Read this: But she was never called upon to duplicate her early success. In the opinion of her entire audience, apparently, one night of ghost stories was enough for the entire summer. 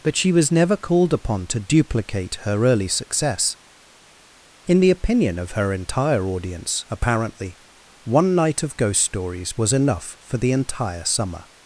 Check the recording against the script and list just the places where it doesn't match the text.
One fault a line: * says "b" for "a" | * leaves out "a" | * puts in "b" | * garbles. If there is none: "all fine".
all fine